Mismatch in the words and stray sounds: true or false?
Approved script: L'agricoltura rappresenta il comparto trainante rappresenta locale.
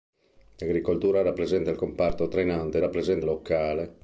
false